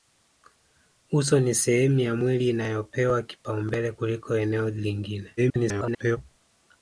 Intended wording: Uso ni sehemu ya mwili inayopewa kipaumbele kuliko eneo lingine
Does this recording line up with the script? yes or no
no